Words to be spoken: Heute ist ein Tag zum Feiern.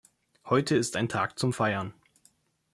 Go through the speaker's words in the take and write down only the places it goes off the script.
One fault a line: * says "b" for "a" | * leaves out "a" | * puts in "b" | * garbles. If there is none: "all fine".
all fine